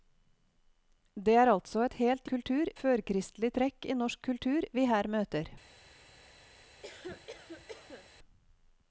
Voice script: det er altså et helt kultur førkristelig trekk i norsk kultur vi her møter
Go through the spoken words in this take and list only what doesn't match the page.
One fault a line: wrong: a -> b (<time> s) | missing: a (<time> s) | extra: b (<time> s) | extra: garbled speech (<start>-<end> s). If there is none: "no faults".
no faults